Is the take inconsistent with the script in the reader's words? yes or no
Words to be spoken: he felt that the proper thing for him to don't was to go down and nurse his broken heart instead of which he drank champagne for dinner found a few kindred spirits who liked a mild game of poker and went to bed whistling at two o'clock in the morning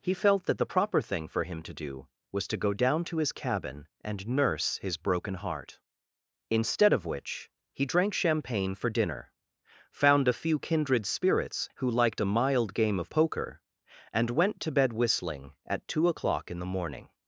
yes